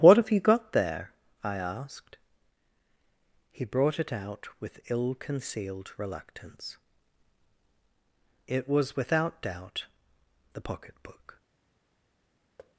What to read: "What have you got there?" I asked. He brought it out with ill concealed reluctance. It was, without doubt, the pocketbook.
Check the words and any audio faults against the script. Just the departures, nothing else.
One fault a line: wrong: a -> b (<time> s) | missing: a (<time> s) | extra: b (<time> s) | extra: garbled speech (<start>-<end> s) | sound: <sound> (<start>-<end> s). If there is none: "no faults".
sound: thud (12.6-12.8 s)